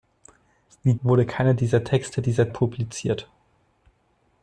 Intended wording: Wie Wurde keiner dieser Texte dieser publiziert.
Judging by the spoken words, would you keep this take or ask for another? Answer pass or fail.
pass